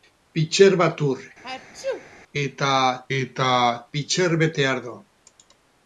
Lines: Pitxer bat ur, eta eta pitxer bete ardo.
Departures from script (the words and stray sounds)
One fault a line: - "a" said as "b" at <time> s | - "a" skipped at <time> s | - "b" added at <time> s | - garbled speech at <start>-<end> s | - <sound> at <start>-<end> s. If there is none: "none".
- sneeze at 1.4-2.1 s